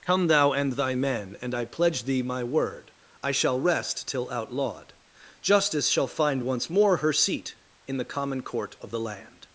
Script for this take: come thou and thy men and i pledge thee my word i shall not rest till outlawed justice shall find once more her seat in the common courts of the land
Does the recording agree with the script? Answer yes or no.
no